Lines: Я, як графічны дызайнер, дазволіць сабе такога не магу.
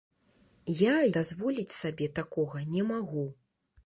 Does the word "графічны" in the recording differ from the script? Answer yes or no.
yes